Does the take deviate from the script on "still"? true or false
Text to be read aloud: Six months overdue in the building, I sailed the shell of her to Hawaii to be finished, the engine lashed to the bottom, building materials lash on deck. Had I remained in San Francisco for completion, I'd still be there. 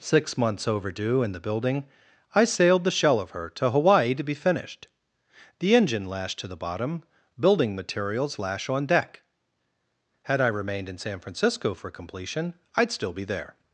false